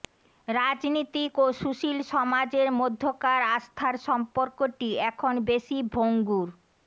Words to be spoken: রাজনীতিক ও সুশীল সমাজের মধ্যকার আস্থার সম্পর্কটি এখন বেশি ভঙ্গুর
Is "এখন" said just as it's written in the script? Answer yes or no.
yes